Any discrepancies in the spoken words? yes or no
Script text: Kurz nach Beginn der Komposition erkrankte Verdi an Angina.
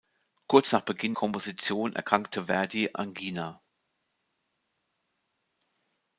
yes